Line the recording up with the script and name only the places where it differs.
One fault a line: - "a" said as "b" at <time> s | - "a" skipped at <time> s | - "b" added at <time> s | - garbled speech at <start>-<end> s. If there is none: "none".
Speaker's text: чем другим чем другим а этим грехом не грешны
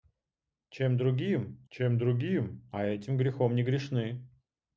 none